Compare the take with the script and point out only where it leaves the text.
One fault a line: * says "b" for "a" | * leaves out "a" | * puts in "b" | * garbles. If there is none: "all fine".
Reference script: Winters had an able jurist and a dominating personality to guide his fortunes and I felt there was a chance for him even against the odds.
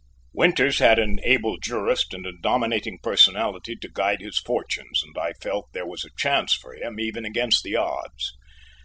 all fine